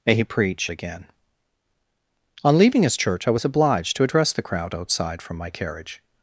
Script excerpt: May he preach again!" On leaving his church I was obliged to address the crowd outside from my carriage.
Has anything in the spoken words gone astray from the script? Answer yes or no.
no